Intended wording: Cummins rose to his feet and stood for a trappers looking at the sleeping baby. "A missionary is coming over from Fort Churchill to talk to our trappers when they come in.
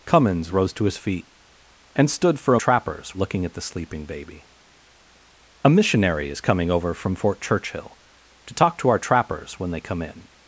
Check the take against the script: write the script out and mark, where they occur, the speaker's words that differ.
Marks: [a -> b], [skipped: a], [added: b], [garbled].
Cummins rose to his feet and stood for a trappers looking at the sleeping baby. "A missionary is coming over from Fort Churchill to talk to our trappers when they come in.